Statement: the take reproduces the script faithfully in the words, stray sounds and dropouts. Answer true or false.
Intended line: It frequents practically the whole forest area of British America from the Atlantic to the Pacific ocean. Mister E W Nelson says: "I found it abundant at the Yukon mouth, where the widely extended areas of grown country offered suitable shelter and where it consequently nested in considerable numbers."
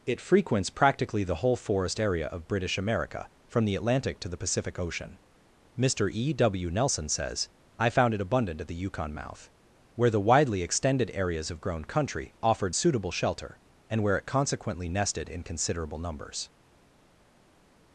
true